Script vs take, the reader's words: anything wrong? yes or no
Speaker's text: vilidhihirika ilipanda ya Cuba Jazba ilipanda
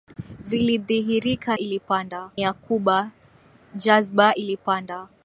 no